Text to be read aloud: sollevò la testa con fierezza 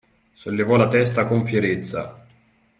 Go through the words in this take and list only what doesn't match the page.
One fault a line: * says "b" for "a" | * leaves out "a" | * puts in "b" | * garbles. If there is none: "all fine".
all fine